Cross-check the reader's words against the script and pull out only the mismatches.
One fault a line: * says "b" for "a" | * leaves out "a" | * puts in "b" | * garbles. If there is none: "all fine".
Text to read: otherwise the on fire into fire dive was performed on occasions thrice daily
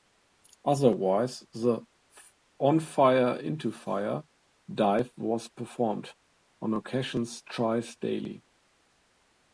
all fine